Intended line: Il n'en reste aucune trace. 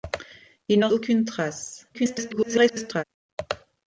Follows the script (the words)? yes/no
no